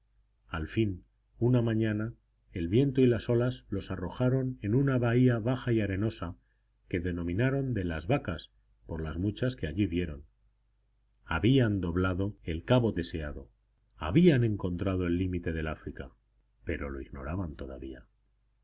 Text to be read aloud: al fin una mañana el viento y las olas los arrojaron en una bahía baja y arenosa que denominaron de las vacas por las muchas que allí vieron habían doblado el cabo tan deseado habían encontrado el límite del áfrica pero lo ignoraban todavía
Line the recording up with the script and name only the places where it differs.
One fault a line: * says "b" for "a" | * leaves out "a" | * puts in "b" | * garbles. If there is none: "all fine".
* leaves out "tan"